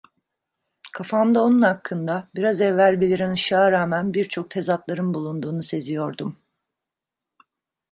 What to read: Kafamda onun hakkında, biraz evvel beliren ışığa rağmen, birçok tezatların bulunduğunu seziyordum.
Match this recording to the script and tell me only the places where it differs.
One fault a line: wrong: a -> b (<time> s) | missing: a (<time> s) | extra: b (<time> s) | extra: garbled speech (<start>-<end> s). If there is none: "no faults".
no faults